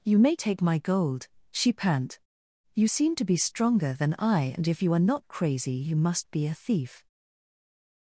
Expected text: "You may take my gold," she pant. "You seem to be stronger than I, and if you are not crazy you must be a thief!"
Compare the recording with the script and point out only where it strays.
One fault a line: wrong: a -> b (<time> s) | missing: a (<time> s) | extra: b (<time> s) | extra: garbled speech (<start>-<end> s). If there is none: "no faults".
no faults